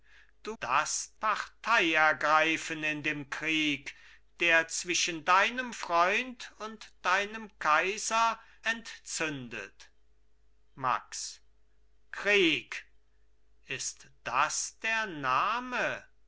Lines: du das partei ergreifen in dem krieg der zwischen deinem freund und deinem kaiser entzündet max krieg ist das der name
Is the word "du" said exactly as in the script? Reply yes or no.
yes